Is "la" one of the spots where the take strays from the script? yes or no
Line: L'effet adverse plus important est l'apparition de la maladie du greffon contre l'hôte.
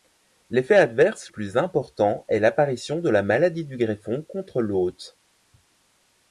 no